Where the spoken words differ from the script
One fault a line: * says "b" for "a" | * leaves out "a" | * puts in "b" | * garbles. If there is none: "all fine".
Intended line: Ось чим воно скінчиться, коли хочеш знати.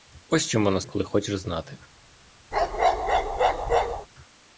* leaves out "скінчиться"